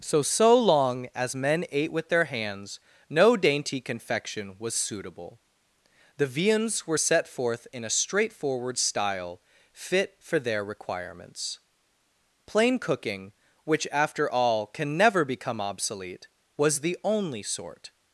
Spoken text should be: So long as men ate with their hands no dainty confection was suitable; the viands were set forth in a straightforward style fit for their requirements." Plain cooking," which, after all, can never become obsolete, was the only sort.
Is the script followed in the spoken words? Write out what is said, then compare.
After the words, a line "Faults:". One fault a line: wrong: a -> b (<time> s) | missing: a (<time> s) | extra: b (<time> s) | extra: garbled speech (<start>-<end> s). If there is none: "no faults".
So so long as men ate with their hands no dainty confection was suitable; the viands were set forth in a straightforward style fit for their requirements." Plain cooking," which, after all, can never become obsolete, was the only sort.
Faults:
extra: so (0.2 s)